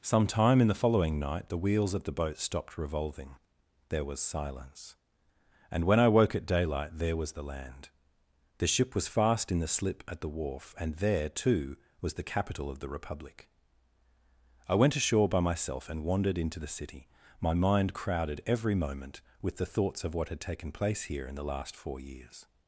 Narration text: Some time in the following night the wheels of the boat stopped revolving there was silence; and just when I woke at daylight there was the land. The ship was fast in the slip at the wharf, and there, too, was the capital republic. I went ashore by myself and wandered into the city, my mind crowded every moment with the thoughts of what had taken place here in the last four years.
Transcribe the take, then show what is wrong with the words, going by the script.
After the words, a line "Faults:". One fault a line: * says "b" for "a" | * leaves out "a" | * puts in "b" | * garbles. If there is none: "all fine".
Some time in the following night the wheels of the boat stopped revolving there was silence; and when I woke at daylight there was the land. The ship was fast in the slip at the wharf, and there, too, was the capital of the republic. I went ashore by myself and wandered into the city, my mind crowded every moment with the thoughts of what had taken place here in the last four years.
Faults:
* leaves out "just"
* puts in "of the"